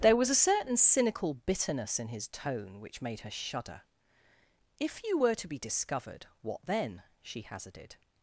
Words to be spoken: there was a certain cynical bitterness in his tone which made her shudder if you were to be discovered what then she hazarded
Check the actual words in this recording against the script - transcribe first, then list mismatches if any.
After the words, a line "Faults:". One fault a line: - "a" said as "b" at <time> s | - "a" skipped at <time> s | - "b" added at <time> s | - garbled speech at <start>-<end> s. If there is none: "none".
there was a certain cynical bitterness in his tone which made her shudder if you were to be discovered what then she hazarded
Faults:
none